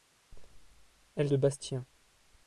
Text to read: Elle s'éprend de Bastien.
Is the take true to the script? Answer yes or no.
no